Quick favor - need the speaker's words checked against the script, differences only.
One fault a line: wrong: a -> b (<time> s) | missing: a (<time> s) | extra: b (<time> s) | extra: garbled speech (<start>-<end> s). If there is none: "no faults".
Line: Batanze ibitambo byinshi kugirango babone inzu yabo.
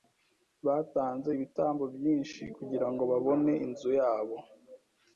no faults